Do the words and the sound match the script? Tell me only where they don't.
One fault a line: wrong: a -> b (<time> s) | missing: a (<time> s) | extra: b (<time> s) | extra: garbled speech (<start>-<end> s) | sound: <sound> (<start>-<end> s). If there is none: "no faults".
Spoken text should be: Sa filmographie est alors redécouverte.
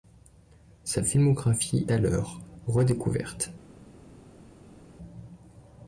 missing: est (1.9 s)